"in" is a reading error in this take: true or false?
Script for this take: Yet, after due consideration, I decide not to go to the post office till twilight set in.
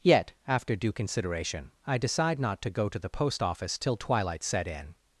false